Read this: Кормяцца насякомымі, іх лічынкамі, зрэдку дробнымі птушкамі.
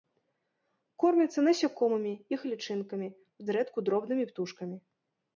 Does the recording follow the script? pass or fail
pass